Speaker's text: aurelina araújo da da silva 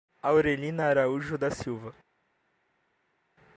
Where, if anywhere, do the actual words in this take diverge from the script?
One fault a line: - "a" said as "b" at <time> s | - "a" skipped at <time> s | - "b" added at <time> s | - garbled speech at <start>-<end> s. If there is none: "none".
- "da" skipped at 1.5 s